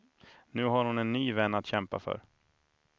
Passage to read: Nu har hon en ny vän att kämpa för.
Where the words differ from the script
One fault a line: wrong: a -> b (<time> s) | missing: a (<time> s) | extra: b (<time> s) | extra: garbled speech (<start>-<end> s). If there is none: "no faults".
no faults